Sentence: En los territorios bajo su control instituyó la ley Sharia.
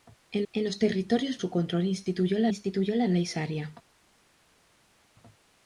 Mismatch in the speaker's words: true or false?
true